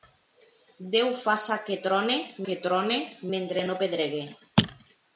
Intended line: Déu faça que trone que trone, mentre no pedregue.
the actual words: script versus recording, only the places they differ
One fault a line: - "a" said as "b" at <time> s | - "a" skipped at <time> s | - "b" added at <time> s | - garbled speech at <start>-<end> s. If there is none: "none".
none